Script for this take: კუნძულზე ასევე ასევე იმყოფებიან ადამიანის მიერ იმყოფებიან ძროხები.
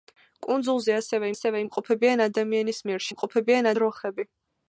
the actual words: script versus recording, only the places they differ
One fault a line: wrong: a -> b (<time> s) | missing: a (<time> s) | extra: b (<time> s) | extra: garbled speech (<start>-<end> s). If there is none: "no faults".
no faults